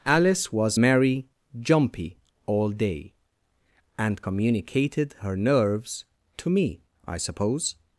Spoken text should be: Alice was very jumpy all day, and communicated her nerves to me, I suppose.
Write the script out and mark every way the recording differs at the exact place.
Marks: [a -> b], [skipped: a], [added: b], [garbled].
Alice was [very -> merry] jumpy all day, and communicated her nerves to me, I suppose.